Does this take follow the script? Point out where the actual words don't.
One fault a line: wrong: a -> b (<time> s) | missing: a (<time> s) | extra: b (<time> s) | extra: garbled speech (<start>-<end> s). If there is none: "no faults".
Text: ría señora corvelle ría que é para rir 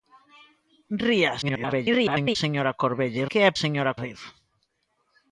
extra: garbled speech (1.4-2.4 s)
missing: ría (3.2 s)
wrong: para -> señora (3.6 s)